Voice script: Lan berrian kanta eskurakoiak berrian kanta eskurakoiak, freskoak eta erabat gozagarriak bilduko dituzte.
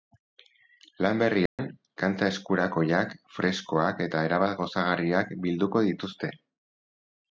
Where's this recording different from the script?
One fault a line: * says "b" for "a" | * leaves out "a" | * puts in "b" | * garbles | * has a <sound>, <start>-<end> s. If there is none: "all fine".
* has a dropout, 1.5-1.6 s
* leaves out "berrian kanta eskurakoiak"